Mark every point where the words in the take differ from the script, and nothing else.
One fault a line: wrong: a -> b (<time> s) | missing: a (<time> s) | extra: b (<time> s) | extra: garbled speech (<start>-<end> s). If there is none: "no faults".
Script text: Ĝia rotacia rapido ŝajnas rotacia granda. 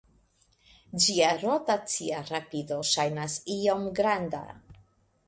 wrong: rotacia -> iom (3.5 s)